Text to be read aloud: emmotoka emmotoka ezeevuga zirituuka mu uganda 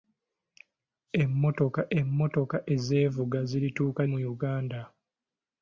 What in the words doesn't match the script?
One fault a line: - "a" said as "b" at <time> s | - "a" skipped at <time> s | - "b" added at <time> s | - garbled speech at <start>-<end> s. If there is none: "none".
none